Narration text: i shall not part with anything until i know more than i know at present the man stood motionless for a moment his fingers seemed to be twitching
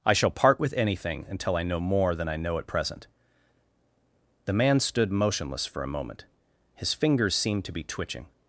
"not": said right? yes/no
no